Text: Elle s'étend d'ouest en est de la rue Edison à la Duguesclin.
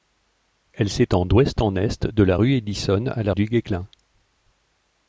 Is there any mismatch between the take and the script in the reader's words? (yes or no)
no